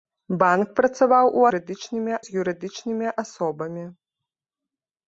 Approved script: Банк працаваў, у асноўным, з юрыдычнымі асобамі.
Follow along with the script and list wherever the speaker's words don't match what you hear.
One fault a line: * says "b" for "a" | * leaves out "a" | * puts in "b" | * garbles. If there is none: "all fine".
* says "юрыдычнымі" for "асноўным"